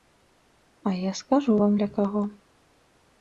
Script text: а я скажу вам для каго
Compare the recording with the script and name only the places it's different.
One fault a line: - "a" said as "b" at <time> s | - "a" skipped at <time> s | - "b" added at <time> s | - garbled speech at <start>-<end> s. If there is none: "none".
none